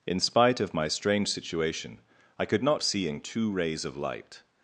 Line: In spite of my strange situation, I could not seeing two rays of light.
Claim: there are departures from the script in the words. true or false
false